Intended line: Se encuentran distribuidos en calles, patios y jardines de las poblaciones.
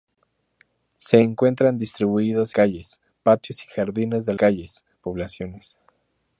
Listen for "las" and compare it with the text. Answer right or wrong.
wrong